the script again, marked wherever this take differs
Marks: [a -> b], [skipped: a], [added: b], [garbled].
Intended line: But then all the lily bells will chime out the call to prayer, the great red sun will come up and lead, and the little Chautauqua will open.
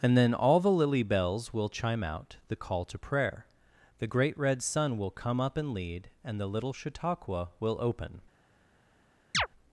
[But -> And] then all the lily bells will chime out the call to prayer, the great red sun will come up and lead, and the little Chautauqua will open.